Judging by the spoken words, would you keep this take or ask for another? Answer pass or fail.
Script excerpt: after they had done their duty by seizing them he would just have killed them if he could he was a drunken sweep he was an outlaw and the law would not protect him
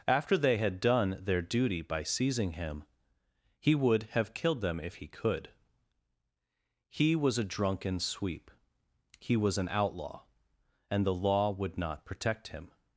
fail